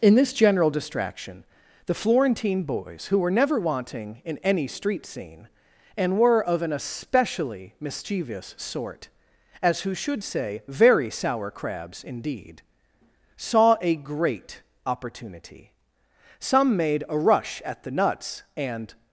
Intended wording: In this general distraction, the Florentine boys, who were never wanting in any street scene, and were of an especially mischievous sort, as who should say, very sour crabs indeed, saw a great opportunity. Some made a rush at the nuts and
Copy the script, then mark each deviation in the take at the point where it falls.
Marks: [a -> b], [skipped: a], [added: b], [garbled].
In this general distraction, the Florentine boys, who were never wanting in any street scene, and were of an especially mischievous sort, as who should say, very sour crabs indeed, saw a great opportunity. Some made a rush at the nuts and